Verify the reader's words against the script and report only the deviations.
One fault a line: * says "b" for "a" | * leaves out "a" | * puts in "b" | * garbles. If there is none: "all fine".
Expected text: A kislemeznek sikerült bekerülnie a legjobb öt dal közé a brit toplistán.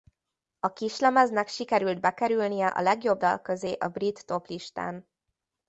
* leaves out "öt"